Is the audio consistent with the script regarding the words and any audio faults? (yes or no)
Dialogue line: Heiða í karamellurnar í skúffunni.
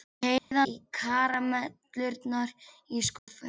no